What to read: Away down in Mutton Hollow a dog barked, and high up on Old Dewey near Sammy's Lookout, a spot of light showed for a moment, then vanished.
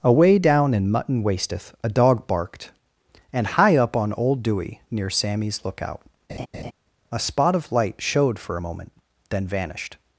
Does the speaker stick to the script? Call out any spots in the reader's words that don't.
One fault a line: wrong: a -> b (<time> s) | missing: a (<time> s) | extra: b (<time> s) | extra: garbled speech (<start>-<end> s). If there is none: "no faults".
wrong: Hollow -> Wasteth (1.2 s)